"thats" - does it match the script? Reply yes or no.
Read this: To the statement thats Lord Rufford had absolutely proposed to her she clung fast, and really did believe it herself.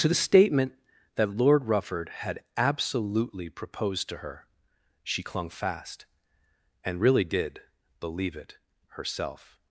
no